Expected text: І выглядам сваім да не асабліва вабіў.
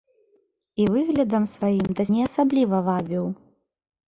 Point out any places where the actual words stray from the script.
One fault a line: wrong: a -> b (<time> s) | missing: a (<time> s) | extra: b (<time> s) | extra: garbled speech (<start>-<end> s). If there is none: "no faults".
no faults